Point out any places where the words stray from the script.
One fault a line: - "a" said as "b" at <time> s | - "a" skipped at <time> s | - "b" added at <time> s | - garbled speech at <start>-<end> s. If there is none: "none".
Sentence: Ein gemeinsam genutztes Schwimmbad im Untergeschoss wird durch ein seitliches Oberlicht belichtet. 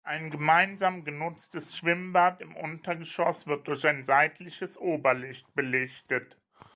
none